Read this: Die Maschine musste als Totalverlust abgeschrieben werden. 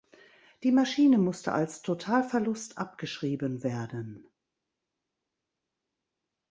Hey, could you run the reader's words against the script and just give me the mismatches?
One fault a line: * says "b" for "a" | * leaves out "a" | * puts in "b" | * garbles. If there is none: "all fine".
all fine